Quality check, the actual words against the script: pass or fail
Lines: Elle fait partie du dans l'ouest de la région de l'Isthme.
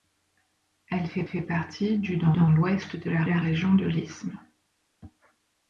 fail